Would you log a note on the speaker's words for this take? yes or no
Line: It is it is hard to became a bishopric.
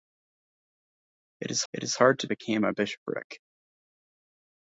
no